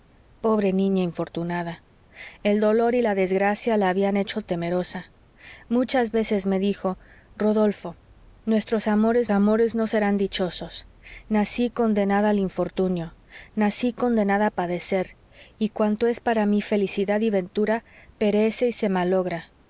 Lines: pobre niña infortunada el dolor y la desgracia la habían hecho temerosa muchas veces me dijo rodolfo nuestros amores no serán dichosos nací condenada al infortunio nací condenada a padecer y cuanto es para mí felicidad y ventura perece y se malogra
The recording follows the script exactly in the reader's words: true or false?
false